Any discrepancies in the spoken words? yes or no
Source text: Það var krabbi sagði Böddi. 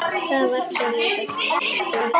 yes